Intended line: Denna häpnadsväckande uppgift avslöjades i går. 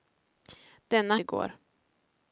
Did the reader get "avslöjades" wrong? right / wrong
wrong